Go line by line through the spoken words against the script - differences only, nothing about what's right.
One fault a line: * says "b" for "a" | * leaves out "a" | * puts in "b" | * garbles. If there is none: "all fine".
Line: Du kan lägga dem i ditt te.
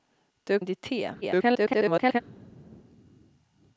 * leaves out "kan lägga dem"
* garbles